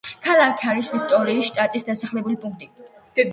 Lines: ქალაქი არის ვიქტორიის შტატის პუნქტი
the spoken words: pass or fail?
fail